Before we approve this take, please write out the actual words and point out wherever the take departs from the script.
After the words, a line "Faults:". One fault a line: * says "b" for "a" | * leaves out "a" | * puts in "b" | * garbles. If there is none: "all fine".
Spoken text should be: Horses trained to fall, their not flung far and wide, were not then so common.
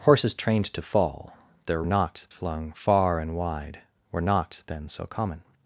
Horses trained to fall, their not flung far and wide, were not then so common.
Faults:
all fine